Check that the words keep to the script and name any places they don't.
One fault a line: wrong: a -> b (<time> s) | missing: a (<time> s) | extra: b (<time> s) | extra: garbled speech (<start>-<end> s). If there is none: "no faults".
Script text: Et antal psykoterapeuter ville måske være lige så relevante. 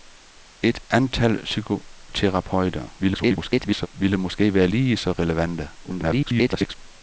extra: garbled speech (3.0-3.9 s)
extra: garbled speech (5.8-6.8 s)